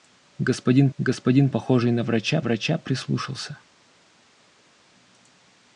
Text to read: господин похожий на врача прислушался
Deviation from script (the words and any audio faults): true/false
true